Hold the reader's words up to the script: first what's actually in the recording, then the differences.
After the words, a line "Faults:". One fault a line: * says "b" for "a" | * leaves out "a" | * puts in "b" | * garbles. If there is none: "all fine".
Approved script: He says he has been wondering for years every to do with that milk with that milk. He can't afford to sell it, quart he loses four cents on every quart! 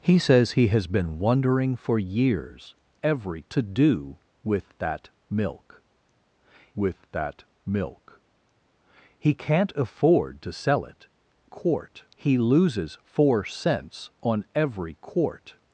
He says he has been wondering for years every to do with that milk with that milk. He can't afford to sell it, quart he loses four cents on every quart!
Faults:
all fine